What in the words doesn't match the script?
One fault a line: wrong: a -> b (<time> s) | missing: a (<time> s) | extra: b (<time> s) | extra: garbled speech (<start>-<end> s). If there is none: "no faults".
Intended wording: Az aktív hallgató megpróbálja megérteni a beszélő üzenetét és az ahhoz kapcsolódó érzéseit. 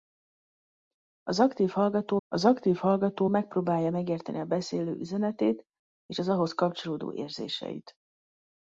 extra: az aktív hallgató (2.3 s)